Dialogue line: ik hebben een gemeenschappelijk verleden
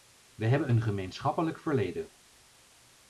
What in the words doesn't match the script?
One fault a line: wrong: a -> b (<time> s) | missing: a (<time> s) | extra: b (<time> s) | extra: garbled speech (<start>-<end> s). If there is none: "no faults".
wrong: ik -> we (0.3 s)